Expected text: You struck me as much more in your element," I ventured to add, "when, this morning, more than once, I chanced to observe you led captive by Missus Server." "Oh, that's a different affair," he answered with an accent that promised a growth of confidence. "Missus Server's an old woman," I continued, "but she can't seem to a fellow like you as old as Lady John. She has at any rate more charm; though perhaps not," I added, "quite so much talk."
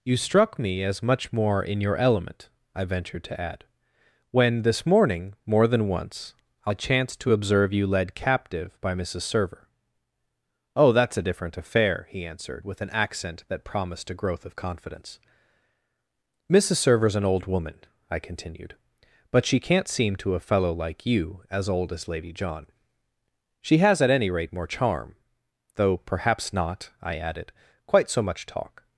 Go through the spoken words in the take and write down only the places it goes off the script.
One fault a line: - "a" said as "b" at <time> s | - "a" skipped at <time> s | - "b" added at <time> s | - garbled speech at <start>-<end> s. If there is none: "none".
none